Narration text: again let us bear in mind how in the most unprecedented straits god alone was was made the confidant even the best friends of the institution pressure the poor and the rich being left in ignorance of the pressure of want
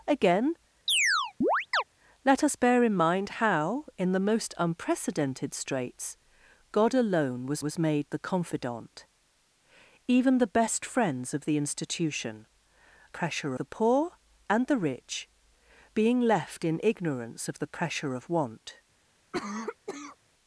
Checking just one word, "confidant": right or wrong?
right